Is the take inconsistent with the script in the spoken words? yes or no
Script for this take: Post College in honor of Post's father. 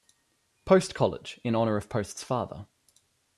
no